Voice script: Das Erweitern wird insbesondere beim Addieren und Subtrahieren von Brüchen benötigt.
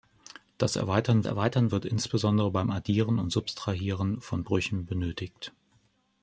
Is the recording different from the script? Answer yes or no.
yes